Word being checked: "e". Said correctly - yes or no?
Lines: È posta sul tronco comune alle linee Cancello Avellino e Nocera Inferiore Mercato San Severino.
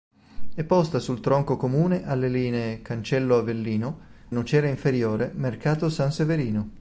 no